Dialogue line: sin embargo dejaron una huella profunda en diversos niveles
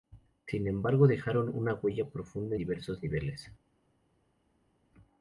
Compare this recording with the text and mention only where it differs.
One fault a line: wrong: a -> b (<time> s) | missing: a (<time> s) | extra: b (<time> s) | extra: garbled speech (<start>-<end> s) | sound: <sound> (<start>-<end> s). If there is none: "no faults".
missing: en (2.5 s)